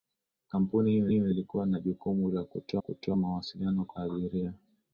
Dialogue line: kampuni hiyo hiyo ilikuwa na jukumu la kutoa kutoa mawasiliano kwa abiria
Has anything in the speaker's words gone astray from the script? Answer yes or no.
no